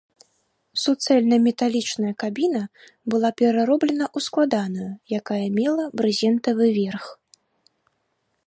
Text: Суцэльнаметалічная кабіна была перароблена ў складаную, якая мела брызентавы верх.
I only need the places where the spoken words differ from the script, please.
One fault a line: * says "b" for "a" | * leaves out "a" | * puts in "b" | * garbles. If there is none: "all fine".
all fine